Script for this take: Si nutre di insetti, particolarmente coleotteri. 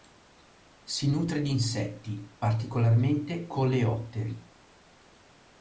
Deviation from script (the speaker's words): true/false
false